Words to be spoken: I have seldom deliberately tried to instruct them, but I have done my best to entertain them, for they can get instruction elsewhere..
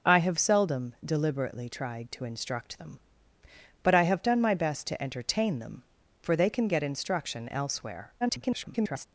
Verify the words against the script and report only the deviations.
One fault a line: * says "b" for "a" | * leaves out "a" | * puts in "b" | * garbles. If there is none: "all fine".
* garbles